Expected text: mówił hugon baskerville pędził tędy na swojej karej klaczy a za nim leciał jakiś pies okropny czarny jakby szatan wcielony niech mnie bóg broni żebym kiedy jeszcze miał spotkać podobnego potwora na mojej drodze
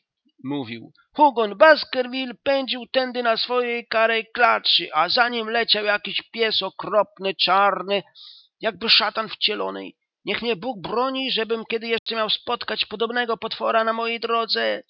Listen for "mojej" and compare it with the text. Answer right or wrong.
right